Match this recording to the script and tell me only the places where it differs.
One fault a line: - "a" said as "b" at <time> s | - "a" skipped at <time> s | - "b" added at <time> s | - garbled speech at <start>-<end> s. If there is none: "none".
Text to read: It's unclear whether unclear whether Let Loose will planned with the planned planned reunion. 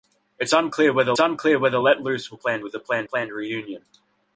none